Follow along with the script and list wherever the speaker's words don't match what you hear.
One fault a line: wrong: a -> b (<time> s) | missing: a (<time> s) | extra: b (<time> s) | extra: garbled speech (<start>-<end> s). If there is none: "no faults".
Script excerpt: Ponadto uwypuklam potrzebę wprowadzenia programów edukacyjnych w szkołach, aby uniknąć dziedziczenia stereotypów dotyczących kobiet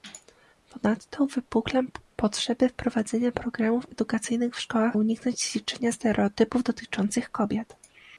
missing: aby (5.0 s)